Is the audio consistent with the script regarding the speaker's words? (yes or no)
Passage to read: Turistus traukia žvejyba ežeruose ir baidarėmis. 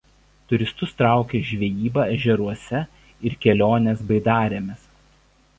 no